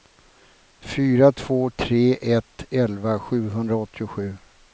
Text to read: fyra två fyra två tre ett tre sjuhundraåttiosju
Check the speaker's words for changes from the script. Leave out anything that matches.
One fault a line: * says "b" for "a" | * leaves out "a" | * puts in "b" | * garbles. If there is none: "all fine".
* leaves out "fyra två"
* says "elva" for "tre"